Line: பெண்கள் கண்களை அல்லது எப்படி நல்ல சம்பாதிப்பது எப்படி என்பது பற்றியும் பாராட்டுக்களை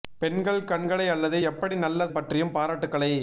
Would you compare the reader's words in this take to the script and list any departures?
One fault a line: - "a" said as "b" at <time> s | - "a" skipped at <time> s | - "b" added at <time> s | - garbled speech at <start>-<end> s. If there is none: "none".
- "சம்பாதிப்பது எப்படி என்பது" skipped at 2.1 s